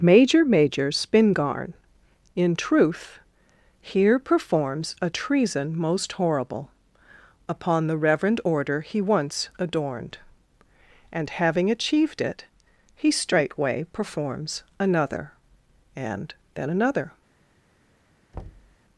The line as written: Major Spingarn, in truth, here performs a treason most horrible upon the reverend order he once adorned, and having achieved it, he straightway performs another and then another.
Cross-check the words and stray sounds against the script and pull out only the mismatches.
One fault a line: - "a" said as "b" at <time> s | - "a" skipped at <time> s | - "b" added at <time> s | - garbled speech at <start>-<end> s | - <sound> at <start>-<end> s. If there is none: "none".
- "major" added at 0.4 s
- thud at 18.3-18.8 s